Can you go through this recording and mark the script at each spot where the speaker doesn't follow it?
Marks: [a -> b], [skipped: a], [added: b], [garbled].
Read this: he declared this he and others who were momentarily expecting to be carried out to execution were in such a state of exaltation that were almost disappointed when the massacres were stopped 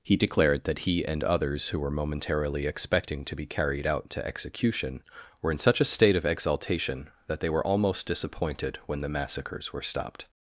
he declared [this -> that] he and others who were momentarily expecting to be carried out to execution were in such a state of exaltation that [added: they] were almost disappointed when the massacres were stopped